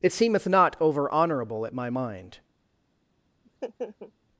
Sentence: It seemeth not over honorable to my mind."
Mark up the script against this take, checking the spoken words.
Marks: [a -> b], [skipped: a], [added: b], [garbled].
It seemeth not over honorable [to -> at] my mind."